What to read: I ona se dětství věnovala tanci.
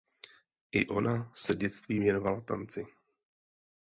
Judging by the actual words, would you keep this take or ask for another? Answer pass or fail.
pass